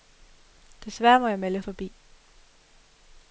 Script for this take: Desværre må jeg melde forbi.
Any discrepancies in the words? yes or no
no